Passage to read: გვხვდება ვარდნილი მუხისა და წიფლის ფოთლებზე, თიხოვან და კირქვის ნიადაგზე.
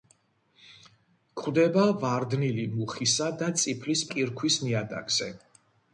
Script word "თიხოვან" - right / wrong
wrong